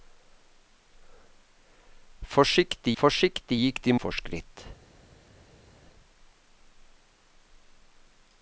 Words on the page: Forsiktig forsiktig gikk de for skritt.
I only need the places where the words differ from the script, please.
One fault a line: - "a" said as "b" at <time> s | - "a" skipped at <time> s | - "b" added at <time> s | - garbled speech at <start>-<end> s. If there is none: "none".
none